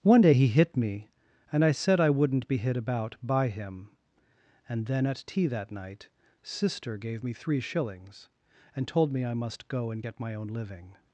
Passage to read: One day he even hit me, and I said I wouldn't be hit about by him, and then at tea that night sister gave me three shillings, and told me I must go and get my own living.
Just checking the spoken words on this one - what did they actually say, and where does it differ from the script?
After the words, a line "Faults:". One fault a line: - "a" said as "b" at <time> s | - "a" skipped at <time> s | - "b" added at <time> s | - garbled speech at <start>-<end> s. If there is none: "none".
One day he hit me, and I said I wouldn't be hit about by him, and then at tea that night sister gave me three shillings, and told me I must go and get my own living.
Faults:
- "even" skipped at 0.5 s